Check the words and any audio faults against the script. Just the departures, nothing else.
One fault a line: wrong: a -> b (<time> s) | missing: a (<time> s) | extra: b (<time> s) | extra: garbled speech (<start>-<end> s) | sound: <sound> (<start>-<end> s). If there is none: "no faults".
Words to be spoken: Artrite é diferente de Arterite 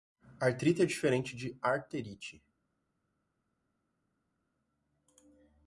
no faults